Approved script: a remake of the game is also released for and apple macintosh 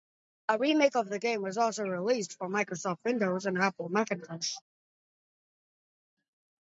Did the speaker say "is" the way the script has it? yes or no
no